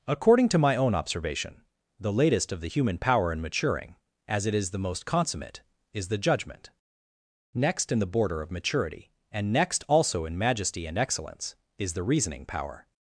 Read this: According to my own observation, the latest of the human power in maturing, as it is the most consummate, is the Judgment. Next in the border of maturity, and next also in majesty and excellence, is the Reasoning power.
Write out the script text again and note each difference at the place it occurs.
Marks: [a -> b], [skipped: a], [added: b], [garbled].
According to my own observation, the latest of the human power in maturing, as it is the most consummate, is the Judgment. Next in the border of maturity, and next also in majesty and excellence, is the Reasoning power.